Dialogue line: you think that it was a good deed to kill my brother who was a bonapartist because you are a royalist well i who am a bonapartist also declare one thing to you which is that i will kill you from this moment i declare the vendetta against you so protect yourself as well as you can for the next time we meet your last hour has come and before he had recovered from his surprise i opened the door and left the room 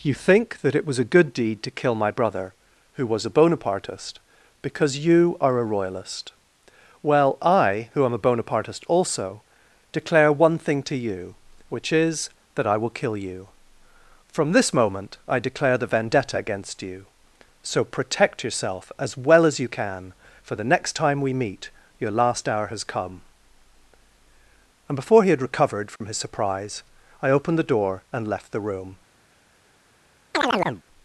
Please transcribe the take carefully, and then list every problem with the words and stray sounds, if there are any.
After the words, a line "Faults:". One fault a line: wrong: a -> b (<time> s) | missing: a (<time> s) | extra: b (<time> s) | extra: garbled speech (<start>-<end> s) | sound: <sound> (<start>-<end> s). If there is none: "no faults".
you think that it was a good deed to kill my brother who was a bonapartist because you are a royalist well i who am a bonapartist also declare one thing to you which is that i will kill you from this moment i declare the vendetta against you so protect yourself as well as you can for the next time we meet your last hour has come and before he had recovered from his surprise i opened the door and left the room
Faults:
sound: dropout (26.0-26.0 s)
sound: chirp (30.3-30.8 s)